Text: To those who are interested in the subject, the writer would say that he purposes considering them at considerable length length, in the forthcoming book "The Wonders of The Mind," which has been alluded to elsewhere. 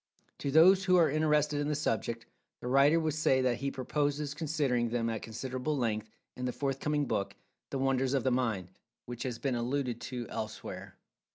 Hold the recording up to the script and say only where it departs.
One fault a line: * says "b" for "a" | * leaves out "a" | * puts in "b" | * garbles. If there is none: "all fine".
* leaves out "length"